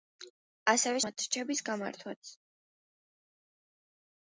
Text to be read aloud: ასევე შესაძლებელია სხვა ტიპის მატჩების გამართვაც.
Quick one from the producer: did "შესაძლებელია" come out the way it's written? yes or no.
no